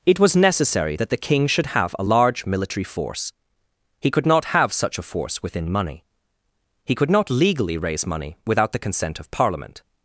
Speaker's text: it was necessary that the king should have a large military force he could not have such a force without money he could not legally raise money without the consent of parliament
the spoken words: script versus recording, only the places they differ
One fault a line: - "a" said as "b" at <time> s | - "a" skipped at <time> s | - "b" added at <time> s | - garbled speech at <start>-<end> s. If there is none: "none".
- "without" said as "within" at 5.4 s